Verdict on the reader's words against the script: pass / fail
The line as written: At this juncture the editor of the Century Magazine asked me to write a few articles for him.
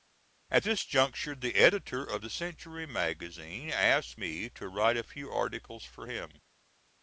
pass